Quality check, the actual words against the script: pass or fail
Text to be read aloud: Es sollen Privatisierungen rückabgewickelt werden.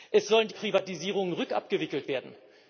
pass